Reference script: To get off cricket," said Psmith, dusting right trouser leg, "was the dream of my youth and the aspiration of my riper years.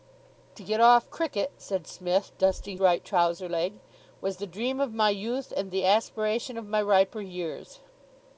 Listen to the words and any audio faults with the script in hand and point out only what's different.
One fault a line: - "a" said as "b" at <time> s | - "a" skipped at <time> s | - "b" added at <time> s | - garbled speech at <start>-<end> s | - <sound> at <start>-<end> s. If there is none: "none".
none